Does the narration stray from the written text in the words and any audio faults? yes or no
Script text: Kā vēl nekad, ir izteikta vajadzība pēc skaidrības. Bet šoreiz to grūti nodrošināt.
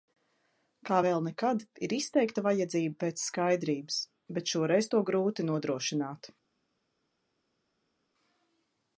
no